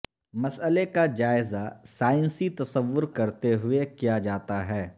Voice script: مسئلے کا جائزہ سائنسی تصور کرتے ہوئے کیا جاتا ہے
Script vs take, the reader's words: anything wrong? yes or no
no